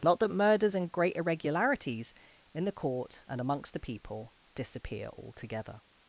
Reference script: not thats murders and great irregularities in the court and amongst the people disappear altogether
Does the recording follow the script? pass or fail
fail